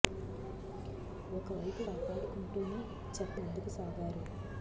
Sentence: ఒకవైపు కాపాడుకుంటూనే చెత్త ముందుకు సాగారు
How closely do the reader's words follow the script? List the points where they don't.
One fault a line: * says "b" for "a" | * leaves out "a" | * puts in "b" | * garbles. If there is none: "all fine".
all fine